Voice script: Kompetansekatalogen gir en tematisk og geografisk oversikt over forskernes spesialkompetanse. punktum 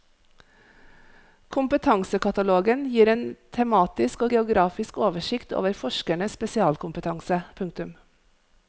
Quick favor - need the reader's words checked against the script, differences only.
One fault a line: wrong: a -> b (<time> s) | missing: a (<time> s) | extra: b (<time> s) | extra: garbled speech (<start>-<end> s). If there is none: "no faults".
no faults